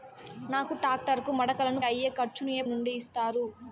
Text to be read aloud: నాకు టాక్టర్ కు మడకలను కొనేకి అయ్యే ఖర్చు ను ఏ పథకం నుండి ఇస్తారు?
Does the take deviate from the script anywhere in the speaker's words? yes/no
yes